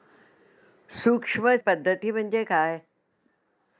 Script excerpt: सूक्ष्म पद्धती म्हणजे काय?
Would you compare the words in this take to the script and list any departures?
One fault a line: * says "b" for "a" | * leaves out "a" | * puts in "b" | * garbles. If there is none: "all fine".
all fine